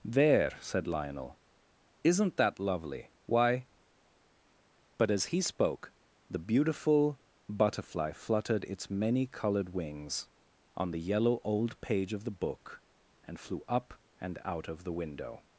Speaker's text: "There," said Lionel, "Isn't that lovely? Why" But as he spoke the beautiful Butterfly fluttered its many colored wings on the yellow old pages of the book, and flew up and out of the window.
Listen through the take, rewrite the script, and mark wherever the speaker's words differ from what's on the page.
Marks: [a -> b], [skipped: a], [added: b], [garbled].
"There," said Lionel, "Isn't that lovely? Why" But as he spoke the beautiful Butterfly fluttered its many colored wings on the yellow old [pages -> page] of the book, and flew up and out of the window.